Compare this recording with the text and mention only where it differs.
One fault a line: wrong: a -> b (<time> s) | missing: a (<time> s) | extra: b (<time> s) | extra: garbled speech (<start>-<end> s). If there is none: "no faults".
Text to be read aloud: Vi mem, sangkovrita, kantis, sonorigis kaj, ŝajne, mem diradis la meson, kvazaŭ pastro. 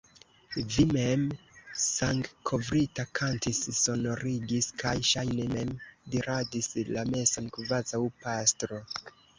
no faults